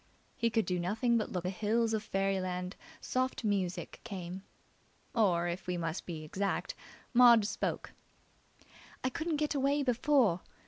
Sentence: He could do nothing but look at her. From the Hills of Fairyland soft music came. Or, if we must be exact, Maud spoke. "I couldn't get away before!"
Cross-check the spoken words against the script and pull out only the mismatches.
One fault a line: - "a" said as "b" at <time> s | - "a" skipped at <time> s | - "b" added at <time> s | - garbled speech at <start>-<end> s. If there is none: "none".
- "at her From" skipped at 1.5 s